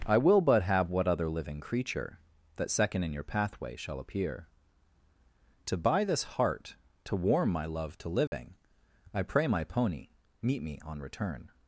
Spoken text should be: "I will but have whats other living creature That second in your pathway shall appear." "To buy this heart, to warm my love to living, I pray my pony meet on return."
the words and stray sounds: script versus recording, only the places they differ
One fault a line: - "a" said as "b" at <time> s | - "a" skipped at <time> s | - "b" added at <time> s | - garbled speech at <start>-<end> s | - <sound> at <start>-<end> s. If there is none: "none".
- "whats" said as "what" at 0.9 s
- dropout at 8.3-8.3 s
- "me" added at 10.6 s